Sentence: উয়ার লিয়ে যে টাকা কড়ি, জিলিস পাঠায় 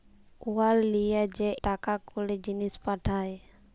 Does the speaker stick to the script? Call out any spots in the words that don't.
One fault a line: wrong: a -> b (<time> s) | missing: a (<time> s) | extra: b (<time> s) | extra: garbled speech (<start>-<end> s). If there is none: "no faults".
no faults